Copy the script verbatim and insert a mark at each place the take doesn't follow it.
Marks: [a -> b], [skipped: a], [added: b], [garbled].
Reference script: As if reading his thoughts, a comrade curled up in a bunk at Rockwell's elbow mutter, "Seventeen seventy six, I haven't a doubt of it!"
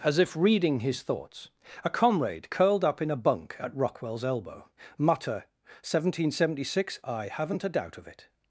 As if reading his thoughts, a comrade curled up in a bunk at Rockwell's elbow mutter, "Seventeen seventy six, I haven't a doubt of it!"